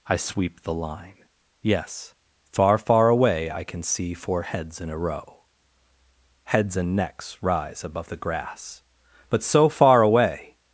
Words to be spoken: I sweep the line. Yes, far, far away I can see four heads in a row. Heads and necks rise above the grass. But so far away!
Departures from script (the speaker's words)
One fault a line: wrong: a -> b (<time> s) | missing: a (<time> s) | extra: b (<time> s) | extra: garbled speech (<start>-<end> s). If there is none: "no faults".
no faults